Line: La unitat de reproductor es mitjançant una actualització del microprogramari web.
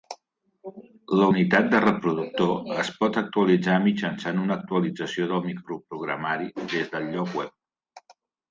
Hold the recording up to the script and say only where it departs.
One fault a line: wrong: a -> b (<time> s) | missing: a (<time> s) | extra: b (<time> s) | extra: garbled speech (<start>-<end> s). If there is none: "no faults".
extra: pot actualitzar (3.0 s)
extra: des del lloc (6.8 s)